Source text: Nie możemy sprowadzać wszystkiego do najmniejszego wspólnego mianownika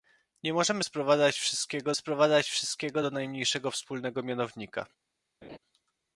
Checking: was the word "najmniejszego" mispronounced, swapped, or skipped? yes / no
no